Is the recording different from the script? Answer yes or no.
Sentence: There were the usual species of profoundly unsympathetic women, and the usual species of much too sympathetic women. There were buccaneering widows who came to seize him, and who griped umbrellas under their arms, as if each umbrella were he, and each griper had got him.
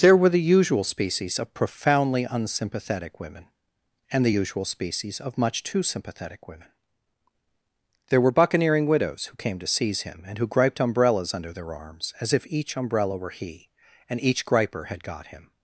no